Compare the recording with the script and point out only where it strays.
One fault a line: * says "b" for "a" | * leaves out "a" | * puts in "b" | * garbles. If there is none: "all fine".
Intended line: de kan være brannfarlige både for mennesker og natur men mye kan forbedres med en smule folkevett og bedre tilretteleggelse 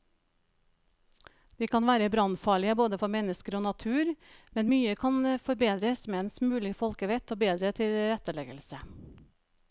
all fine